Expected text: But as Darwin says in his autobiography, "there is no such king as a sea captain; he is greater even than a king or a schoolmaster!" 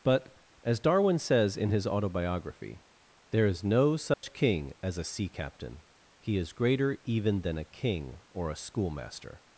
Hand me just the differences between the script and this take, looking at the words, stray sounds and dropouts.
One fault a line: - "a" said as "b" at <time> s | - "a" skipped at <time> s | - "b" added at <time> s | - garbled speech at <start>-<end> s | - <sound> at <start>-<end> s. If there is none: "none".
- dropout at 4.1-4.2 s